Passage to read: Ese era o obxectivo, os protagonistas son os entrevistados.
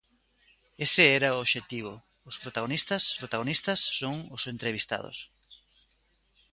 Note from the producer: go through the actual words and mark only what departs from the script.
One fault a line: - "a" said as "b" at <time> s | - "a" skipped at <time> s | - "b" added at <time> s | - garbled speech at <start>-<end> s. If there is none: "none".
- "protagonistas" added at 3.2 s